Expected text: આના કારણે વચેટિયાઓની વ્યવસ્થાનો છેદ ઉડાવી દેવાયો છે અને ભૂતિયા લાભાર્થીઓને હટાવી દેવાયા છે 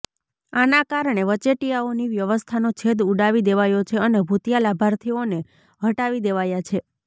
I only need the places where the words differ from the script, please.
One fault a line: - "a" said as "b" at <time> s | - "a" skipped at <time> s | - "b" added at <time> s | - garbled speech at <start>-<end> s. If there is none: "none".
none